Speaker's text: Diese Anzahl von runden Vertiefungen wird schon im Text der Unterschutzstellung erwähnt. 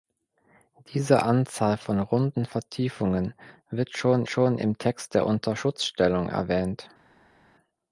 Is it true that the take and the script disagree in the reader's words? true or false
true